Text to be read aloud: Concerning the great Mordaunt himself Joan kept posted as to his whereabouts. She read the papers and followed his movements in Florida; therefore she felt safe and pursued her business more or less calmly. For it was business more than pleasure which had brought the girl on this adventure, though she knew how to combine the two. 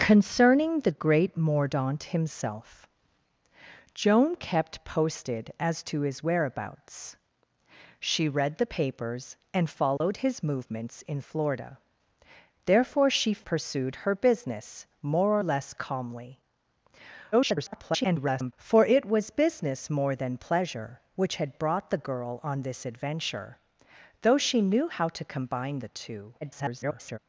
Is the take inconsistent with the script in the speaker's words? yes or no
yes